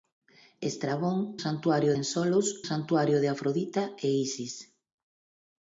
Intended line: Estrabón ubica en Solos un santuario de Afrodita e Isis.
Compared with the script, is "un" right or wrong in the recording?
wrong